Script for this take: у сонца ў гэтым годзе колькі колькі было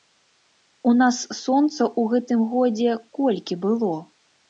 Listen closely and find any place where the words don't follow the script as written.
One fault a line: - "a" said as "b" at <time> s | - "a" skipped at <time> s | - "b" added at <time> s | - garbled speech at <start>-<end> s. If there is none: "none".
- "нас" added at 1.0 s
- "колькі" skipped at 3.6 s